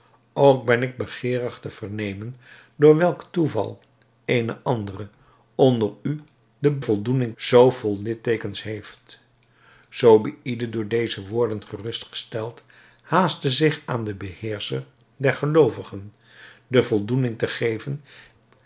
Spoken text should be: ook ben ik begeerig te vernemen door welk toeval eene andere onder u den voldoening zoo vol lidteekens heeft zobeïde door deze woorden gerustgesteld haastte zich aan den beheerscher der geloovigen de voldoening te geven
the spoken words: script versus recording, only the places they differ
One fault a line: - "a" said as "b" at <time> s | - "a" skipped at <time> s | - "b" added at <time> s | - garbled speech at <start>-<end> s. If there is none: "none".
none